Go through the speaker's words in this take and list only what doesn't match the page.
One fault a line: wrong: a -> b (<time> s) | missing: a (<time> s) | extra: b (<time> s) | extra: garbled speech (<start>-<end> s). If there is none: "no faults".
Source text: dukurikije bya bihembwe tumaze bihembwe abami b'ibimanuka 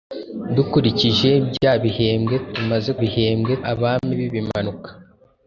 no faults